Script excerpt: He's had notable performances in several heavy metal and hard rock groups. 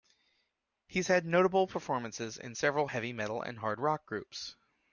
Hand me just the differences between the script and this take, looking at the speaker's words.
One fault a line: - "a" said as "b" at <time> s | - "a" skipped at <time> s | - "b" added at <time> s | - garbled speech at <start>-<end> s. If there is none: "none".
none